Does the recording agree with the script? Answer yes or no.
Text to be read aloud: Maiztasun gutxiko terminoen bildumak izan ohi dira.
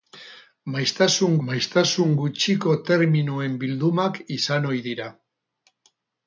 no